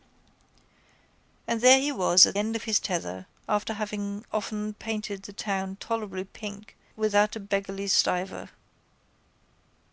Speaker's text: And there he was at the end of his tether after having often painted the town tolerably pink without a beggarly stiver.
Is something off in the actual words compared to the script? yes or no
yes